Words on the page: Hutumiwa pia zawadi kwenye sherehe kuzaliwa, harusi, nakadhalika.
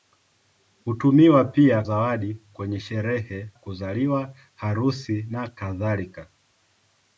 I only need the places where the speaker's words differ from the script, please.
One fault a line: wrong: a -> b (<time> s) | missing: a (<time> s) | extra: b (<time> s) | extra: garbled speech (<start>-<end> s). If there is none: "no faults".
no faults